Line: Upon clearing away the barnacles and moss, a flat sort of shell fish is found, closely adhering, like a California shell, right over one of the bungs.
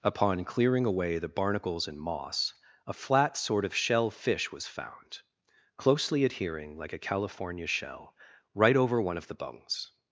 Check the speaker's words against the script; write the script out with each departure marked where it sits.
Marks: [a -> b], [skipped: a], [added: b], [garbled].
Upon clearing away the barnacles and moss, a flat sort of shell fish [is -> was] found, closely adhering, like a California shell, right over one of the bungs.